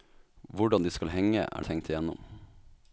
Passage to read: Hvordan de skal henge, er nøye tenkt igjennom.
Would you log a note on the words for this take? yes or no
yes